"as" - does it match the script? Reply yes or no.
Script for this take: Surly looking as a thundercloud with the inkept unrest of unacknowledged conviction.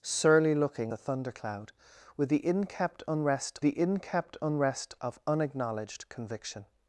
no